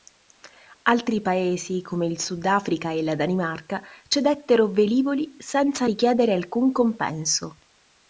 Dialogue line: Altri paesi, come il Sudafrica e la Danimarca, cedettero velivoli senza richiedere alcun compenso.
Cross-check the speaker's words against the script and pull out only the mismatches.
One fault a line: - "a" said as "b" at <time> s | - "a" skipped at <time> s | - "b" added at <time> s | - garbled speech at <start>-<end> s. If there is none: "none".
none